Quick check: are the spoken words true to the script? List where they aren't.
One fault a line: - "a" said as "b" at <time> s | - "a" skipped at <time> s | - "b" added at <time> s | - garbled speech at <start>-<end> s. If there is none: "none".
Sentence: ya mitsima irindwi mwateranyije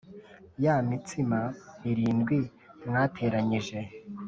none